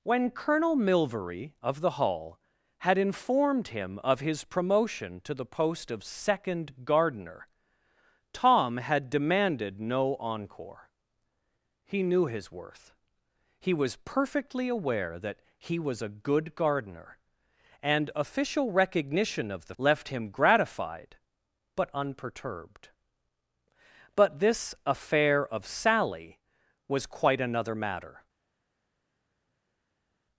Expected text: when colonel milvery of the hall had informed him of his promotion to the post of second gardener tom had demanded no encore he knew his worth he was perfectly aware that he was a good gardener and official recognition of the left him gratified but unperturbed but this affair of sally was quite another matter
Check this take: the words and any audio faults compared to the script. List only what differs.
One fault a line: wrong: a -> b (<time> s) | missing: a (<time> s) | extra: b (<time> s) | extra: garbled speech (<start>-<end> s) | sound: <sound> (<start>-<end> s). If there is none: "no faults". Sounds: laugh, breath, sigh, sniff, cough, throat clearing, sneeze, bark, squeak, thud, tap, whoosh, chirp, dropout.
no faults